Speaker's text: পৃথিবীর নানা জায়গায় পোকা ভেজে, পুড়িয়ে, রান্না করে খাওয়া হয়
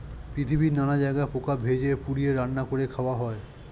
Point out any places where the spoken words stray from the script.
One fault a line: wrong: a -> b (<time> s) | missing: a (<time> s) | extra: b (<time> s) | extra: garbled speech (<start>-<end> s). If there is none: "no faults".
no faults